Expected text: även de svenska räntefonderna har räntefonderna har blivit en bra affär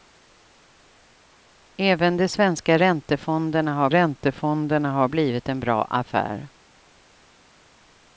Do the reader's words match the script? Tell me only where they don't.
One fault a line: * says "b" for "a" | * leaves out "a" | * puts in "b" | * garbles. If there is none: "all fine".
all fine